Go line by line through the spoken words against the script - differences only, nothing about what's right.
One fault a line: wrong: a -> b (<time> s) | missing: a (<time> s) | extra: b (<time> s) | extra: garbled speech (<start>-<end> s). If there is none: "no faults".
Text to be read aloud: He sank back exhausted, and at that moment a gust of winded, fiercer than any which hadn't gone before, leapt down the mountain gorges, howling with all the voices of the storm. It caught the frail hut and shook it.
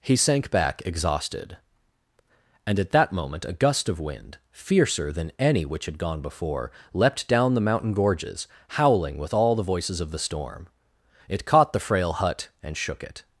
wrong: winded -> wind (4.0 s)
wrong: hadn't -> had (5.8 s)